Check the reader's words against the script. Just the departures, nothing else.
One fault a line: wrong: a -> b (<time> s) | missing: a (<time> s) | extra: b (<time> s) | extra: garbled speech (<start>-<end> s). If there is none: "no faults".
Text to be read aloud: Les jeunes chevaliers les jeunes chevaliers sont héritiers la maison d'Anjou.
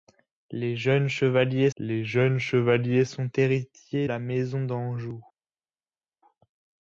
no faults